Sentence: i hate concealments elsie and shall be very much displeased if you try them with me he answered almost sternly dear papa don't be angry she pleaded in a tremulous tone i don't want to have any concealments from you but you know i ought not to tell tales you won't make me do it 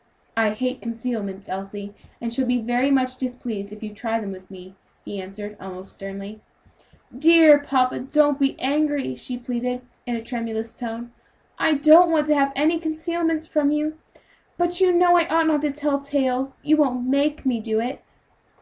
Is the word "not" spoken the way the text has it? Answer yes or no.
yes